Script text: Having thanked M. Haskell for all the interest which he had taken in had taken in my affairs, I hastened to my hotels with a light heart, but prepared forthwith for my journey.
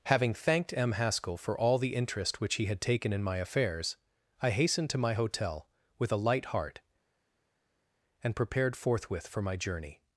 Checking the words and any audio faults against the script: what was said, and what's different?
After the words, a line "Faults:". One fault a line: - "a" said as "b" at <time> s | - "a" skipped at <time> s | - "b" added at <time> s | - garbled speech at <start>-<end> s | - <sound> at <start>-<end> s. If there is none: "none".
Having thanked M. Haskell for all the interest which he had taken in my affairs, I hastened to my hotel with a light heart, and prepared forthwith for my journey.
Faults:
- "had taken in" skipped at 3.2 s
- "hotels" said as "hotel" at 5.1 s
- "but" said as "and" at 8.2 s